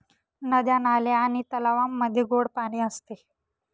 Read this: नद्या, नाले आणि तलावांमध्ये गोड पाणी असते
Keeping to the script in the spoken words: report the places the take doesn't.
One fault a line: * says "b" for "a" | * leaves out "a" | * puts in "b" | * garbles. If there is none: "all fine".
all fine